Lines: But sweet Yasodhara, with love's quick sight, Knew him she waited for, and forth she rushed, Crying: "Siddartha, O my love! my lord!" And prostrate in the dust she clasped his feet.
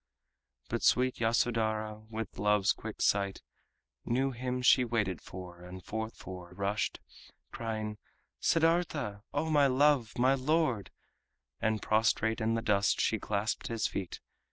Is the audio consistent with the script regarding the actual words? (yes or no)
no